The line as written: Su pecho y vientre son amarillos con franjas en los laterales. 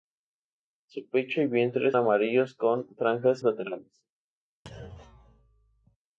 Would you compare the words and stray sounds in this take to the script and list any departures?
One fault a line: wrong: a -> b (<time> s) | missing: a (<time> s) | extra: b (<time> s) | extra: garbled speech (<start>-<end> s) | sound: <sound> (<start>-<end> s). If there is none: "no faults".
missing: son (1.9 s)
missing: en los (3.4 s)
sound: thud (4.7-6.0 s)